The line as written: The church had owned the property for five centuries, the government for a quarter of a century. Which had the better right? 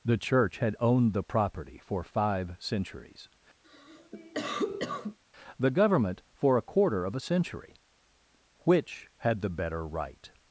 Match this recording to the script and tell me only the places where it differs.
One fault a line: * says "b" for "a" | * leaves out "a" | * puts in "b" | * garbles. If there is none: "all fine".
all fine